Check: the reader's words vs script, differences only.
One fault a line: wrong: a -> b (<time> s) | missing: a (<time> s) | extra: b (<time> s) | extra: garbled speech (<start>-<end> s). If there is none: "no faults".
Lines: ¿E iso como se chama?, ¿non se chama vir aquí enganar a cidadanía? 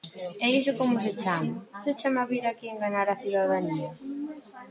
missing: non (1.6 s)